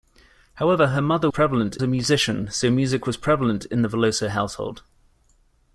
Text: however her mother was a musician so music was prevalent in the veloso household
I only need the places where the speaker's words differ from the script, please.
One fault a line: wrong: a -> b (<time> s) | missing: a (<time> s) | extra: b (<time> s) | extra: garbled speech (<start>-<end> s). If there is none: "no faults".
wrong: was -> prevalent (1.3 s)